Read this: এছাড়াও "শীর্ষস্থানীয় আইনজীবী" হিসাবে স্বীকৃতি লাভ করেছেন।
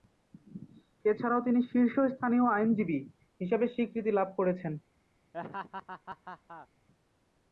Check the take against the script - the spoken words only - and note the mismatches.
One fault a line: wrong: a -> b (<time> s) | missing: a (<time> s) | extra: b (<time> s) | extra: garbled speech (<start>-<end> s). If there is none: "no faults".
extra: তিনি (1.4 s)